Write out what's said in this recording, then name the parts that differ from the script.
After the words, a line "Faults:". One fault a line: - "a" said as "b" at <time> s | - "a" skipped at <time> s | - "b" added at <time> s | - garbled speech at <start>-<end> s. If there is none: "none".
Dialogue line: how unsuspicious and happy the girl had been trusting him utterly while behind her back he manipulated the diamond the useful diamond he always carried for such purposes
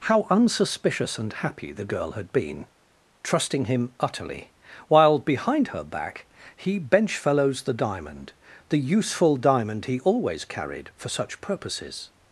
how unsuspicious and happy the girl had been trusting him utterly while behind her back he benchfellows the diamond the useful diamond he always carried for such purposes
Faults:
- "manipulated" said as "benchfellows" at 6.8 s